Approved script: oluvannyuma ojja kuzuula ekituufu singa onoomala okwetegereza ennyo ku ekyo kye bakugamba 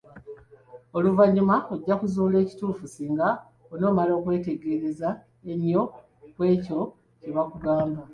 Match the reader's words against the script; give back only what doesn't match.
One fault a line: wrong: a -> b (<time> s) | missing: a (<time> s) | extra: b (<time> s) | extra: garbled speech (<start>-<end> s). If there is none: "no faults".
no faults